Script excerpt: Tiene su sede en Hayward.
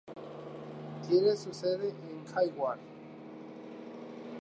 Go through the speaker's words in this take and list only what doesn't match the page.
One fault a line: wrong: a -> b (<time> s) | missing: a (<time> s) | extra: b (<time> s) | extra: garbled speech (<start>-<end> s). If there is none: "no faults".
no faults